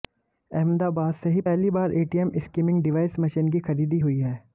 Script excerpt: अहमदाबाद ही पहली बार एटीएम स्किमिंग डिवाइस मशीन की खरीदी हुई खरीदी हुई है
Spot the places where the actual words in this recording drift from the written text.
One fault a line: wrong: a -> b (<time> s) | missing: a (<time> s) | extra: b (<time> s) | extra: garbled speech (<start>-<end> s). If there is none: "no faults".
extra: से (1.1 s)
missing: खरीदी हुई (4.2 s)